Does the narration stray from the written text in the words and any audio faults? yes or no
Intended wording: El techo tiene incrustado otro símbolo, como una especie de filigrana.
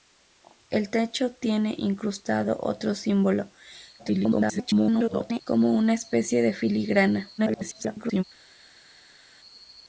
yes